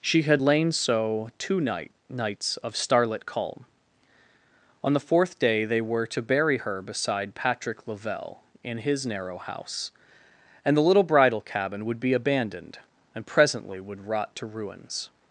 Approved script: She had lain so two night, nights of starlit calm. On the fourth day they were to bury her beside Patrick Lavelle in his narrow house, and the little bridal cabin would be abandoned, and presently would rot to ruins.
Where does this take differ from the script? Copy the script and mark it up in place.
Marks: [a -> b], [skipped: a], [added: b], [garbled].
She had lain so two night, nights of starlit calm. On the fourth day they were to bury her beside Patrick Lavelle in his narrow house, and the little bridal cabin would be abandoned, and presently would rot to ruins.